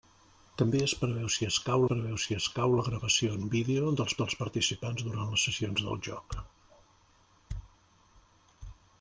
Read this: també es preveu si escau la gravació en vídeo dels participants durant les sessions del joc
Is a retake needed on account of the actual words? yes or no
yes